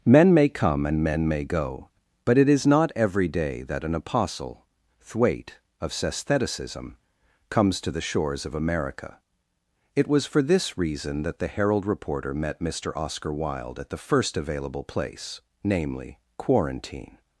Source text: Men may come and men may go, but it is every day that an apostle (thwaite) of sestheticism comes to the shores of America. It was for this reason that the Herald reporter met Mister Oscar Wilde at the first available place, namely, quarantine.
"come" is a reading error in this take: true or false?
false